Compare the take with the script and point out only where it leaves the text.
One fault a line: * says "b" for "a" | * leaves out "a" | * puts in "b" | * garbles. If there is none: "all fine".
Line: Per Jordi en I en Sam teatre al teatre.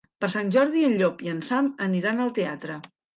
* puts in "Sant"
* puts in "Llop"
* says "aniran" for "teatre"